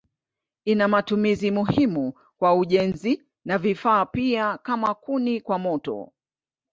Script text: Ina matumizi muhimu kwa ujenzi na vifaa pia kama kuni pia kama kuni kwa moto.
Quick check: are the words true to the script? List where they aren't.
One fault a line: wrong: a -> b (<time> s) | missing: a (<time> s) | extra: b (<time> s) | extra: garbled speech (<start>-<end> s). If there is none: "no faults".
missing: pia kama kuni (5.4 s)